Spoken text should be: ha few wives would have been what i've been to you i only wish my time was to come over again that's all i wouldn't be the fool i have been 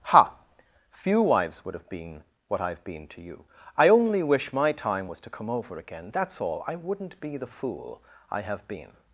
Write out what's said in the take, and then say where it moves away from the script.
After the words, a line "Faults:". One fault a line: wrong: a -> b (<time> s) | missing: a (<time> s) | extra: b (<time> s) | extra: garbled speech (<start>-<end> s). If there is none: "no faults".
ha few wives would have been what i've been to you i only wish my time was to come over again that's all i wouldn't be the fool i have been
Faults:
no faults